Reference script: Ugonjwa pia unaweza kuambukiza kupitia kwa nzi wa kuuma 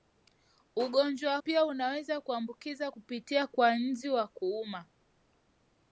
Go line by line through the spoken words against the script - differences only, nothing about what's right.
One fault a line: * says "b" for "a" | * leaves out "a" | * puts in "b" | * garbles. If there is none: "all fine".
all fine